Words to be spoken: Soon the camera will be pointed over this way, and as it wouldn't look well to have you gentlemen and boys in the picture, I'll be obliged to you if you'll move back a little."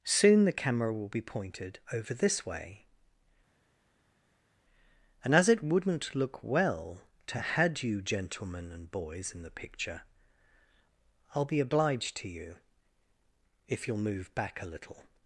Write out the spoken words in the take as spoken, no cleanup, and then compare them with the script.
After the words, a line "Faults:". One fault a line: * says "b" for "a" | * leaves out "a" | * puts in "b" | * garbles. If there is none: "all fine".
Soon the camera will be pointed over this way, and as it wouldn't look well to had you gentlemen and boys in the picture, I'll be obliged to you if you'll move back a little."
Faults:
* says "had" for "have"